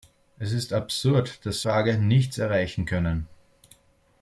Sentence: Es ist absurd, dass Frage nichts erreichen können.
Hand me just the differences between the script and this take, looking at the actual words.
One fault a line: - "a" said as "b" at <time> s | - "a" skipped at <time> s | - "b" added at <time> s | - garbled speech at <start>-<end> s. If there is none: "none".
none